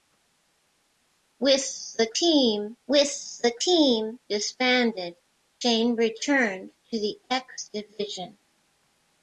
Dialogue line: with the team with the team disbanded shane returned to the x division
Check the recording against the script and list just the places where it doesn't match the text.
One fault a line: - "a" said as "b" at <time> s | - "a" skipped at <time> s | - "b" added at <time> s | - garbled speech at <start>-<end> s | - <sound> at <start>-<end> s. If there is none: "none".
none